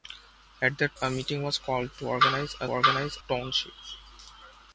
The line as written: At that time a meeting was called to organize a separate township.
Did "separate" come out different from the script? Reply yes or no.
yes